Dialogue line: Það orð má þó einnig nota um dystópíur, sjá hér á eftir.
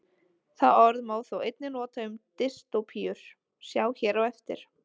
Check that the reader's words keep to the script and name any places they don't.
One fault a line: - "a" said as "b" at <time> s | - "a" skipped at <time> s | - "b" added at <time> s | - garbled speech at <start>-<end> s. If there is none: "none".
none